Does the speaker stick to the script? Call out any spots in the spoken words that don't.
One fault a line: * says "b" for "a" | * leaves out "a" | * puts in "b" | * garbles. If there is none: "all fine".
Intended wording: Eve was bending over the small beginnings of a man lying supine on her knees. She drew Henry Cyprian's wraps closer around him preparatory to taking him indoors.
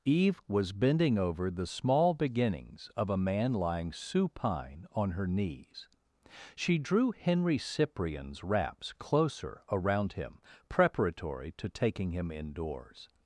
all fine